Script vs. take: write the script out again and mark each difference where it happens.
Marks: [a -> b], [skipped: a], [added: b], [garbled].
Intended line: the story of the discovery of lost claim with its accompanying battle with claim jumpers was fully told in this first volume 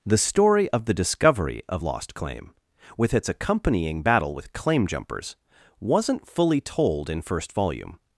the story of the discovery of lost claim with its accompanying battle with claim jumpers [was -> wasn't] fully told in [skipped: this] first volume